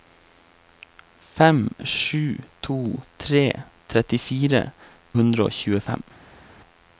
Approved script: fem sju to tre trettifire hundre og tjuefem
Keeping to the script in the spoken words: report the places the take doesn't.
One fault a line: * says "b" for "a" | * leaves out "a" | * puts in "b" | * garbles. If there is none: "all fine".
all fine